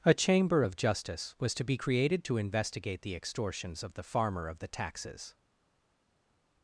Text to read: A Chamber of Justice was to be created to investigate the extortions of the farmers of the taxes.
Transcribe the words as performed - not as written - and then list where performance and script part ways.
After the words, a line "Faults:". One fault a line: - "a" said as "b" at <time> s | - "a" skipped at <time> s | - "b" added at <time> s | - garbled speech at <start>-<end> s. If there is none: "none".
A Chamber of Justice was to be created to investigate the extortions of the farmer of the taxes.
Faults:
- "farmers" said as "farmer" at 4.0 s